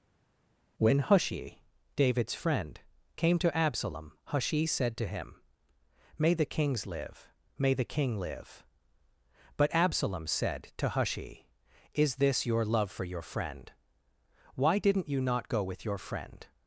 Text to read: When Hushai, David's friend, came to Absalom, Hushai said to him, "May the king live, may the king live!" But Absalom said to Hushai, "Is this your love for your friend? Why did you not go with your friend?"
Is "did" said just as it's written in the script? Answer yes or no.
no